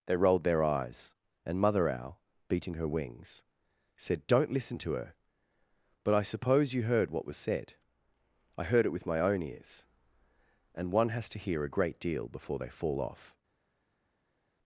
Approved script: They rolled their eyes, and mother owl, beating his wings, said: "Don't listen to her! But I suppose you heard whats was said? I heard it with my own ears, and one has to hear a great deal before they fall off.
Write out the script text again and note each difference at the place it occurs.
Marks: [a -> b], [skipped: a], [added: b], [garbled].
They rolled their eyes, and mother owl, beating [his -> her] wings, said: "Don't listen to her! But I suppose you heard [whats -> what] was said? I heard it with my own ears, and one has to hear a great deal before they fall off.